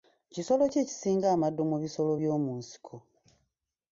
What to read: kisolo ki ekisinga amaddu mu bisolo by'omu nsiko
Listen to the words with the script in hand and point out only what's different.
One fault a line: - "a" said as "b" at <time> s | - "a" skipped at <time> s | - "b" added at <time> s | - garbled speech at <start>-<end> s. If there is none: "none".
none